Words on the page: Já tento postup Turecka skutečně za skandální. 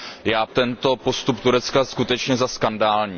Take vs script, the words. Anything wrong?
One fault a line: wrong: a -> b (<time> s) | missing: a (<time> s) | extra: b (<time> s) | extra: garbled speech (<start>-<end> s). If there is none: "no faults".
no faults